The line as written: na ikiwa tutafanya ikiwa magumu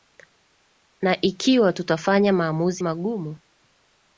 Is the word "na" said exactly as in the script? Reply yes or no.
yes